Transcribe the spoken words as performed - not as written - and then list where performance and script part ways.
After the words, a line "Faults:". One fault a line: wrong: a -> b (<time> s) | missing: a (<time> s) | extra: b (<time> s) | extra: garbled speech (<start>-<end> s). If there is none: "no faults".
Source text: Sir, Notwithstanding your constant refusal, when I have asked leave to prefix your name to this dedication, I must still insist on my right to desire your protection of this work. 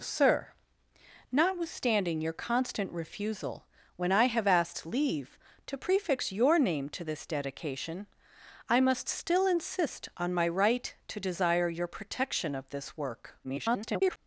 Sir, Notwithstanding your constant refusal, when I have asked leave to prefix your name to this dedication, I must still insist on my right to desire your protection of this work. [garbled]
Faults:
extra: garbled speech (13.4-14.2 s)